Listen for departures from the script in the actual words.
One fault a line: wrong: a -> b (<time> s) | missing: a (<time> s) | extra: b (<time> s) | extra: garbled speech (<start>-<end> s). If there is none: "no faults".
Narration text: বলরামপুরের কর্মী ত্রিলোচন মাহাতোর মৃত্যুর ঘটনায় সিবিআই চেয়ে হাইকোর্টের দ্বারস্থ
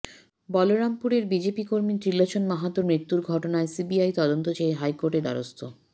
extra: বিজেপি (1.2 s)
extra: তদন্ত (4.2 s)